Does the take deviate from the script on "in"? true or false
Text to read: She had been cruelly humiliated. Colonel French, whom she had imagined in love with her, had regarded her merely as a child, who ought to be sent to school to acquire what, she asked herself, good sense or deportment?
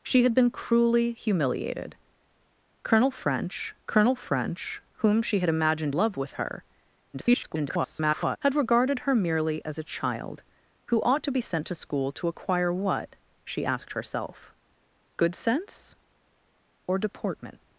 true